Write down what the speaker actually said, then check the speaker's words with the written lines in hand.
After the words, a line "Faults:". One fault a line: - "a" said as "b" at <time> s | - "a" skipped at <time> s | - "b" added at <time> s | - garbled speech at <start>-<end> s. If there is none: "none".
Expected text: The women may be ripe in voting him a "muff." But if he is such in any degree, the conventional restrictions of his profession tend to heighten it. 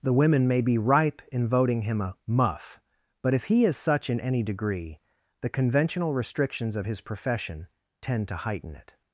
The women may be ripe in voting him a "muff." But if he is such in any degree, the conventional restrictions of his profession tend to heighten it.
Faults:
none